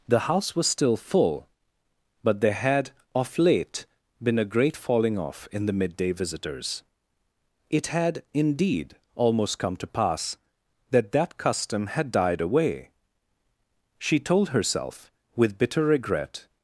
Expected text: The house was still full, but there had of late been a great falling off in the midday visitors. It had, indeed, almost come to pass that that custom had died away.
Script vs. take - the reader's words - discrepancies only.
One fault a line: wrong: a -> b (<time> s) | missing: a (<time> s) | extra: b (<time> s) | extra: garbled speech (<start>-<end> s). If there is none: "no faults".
extra: She told herself with bitter regret (14.0 s)